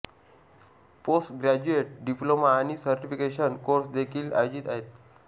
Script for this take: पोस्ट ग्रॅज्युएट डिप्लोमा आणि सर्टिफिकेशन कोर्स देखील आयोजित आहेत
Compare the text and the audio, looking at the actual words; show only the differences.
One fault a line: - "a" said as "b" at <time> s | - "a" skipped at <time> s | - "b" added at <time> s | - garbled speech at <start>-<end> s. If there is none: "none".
none